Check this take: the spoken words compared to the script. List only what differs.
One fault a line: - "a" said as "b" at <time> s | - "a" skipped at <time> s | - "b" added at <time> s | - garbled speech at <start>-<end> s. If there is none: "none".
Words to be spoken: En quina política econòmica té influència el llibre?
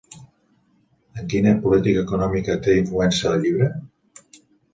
none